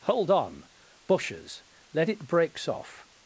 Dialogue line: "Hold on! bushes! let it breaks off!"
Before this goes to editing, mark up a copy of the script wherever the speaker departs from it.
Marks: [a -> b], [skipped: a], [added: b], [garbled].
"Hold on! bushes! let it breaks off!"